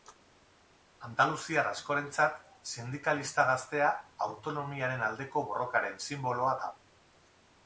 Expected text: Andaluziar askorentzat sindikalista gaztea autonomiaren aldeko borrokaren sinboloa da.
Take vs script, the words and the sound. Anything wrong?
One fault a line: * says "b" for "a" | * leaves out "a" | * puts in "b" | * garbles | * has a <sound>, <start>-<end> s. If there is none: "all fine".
all fine